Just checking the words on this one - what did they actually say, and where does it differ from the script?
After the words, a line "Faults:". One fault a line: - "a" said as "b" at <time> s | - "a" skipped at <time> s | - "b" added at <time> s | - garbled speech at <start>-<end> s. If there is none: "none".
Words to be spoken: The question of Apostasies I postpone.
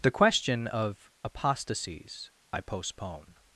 The question of Apostasies I postpone.
Faults:
none